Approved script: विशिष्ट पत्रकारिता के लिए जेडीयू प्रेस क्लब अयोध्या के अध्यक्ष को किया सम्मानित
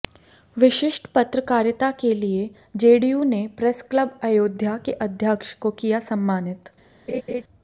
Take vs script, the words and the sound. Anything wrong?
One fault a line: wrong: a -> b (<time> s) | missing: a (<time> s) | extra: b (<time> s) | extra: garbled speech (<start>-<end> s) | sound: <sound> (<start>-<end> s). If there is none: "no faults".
extra: ने (3.2 s)
sound: laugh (7.1-7.4 s)